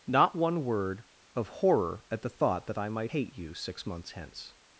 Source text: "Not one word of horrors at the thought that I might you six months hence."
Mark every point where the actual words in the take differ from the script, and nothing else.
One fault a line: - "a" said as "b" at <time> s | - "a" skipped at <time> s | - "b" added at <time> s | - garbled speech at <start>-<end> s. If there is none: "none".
- "horrors" said as "horror" at 1.5 s
- "hate" added at 3.1 s